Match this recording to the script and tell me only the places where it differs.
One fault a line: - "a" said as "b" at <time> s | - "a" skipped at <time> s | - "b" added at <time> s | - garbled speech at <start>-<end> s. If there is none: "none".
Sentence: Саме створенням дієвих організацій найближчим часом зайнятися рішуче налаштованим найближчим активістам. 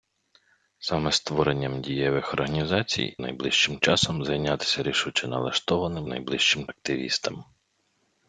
none